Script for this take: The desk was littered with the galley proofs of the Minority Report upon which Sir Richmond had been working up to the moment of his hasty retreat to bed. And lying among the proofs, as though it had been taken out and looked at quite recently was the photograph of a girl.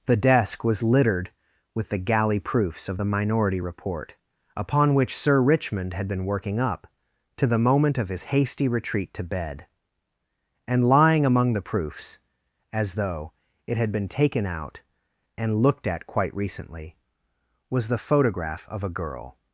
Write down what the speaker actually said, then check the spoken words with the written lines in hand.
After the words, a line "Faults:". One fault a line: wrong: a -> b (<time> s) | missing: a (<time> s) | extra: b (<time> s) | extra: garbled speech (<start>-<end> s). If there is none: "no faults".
The desk was littered with the galley proofs of the Minority Report upon which Sir Richmond had been working up to the moment of his hasty retreat to bed. And lying among the proofs, as though it had been taken out and looked at quite recently was the photograph of a girl.
Faults:
no faults